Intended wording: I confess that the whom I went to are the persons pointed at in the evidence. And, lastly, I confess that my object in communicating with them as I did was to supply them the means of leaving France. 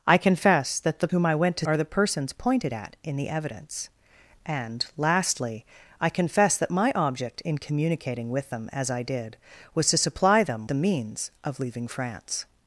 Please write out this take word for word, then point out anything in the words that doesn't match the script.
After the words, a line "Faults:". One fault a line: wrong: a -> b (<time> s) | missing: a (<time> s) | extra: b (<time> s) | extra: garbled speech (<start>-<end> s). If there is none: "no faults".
I confess that the whom I went to are the persons pointed at in the evidence. And, lastly, I confess that my object in communicating with them as I did was to supply them the means of leaving France.
Faults:
no faults